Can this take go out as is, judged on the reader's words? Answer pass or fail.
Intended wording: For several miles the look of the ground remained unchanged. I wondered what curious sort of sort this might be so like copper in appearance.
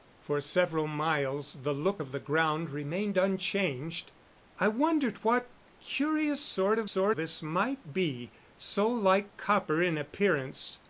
pass